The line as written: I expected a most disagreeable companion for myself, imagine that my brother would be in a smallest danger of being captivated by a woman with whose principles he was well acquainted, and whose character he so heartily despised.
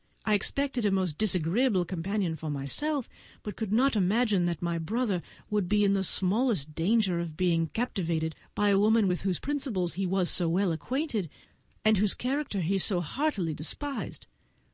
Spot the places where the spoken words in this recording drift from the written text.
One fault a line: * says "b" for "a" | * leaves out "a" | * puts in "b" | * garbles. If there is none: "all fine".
* puts in "but could not"
* says "the" for "a"
* puts in "so"